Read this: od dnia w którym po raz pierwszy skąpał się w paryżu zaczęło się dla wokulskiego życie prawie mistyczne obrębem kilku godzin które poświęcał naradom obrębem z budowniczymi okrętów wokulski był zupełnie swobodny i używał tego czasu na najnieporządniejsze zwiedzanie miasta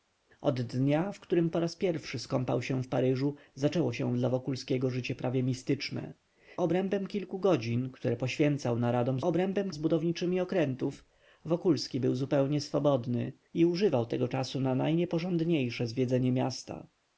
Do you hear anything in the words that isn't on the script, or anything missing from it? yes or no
no